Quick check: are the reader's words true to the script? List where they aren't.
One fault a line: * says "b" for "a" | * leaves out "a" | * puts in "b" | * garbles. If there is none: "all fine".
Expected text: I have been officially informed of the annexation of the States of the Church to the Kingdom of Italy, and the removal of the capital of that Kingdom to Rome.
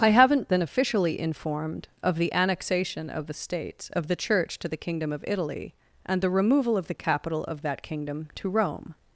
* says "haven't" for "have"